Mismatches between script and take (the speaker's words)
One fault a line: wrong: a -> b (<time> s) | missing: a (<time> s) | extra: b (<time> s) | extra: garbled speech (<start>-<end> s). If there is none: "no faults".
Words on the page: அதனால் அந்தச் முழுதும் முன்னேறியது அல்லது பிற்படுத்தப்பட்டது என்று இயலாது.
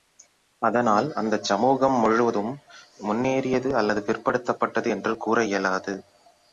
extra: சமூகம் (1.4 s)
extra: கூற (5.2 s)